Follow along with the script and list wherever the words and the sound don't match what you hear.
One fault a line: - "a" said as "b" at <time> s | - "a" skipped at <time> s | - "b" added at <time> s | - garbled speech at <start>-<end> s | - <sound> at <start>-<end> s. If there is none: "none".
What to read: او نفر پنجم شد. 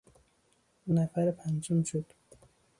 none